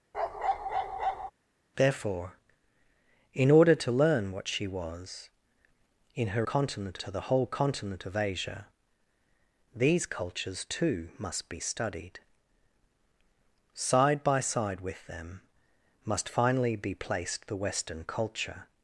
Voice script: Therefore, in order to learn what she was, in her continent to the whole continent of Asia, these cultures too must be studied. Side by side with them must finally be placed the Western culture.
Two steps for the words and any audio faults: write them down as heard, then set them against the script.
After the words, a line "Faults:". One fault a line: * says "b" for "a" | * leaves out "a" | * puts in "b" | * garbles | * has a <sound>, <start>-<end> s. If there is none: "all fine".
Therefore, in order to learn what she was, in her continent to the whole continent of Asia, these cultures too must be studied. Side by side with them must finally be placed the Western culture.
Faults:
* has a bark, 0.1-1.3 s